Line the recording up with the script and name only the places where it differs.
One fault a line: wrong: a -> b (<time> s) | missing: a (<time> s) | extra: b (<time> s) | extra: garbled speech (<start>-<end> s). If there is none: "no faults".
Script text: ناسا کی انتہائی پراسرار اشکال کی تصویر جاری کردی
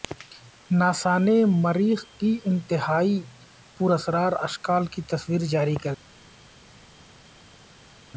extra: نے مریخ (1.2 s)